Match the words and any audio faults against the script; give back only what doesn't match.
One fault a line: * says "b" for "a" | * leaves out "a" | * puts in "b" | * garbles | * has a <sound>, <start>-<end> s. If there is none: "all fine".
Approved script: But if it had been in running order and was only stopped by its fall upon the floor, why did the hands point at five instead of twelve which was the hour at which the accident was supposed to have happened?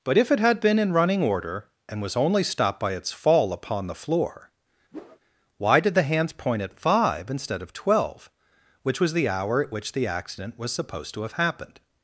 * has a whoosh, 4.9-5.2 s